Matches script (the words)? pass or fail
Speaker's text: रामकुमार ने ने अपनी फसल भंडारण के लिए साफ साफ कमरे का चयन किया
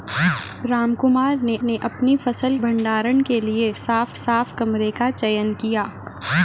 pass